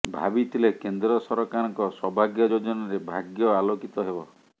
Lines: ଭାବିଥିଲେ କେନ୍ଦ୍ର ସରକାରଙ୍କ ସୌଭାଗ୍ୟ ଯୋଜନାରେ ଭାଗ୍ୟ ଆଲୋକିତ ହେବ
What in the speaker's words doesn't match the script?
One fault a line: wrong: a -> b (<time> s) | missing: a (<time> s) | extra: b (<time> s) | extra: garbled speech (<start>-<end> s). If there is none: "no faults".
no faults